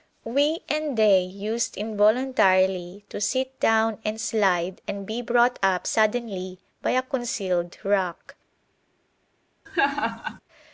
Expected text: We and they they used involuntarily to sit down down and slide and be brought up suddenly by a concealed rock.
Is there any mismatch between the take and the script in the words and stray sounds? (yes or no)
yes